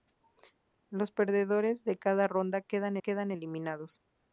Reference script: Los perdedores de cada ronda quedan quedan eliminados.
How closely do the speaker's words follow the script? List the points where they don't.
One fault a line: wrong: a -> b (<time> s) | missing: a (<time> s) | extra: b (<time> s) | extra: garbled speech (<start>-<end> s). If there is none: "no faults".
no faults